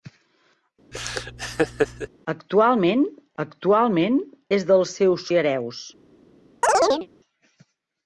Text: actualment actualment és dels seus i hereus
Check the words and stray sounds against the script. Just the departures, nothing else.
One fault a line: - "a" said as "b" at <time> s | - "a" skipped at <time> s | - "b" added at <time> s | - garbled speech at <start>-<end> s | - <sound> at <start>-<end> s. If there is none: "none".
- laugh at 0.9-2.1 s
- chirp at 6.6-7.1 s